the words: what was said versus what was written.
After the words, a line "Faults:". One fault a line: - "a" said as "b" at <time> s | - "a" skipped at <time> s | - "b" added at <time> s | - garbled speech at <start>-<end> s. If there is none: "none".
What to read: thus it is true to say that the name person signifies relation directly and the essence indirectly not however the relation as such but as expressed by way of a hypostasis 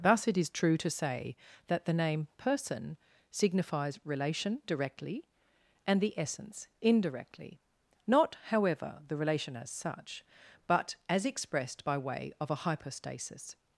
thus it is true to say that the name person signifies relation directly and the essence indirectly not however the relation as such but as expressed by way of a hypostasis
Faults:
none